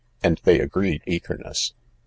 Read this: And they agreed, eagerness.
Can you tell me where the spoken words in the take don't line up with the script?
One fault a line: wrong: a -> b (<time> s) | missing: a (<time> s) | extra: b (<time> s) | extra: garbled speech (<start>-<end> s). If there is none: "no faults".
no faults